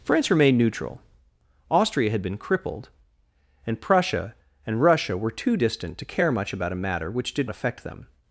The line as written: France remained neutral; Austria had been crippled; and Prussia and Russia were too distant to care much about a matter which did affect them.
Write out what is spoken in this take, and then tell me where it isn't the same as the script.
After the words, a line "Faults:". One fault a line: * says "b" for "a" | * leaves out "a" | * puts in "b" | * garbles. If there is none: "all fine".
France remained neutral; Austria had been crippled; and Prussia and Russia were too distant to care much about a matter which did affect them.
Faults:
all fine